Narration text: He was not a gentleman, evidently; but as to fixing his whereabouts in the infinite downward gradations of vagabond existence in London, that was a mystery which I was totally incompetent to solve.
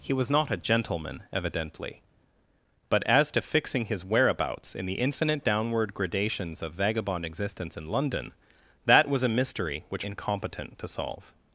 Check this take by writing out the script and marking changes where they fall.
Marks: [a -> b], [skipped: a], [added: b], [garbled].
He was not a gentleman, evidently; but as to fixing his whereabouts in the infinite downward gradations of vagabond existence in London, that was a mystery which [skipped: I was totally] incompetent to solve.